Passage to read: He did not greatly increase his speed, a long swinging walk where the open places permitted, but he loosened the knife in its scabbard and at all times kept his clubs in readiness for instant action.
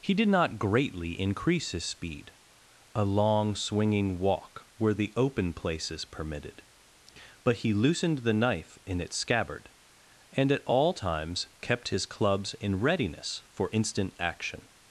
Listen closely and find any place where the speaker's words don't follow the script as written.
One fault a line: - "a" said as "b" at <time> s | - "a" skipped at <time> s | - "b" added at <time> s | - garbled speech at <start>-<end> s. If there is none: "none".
none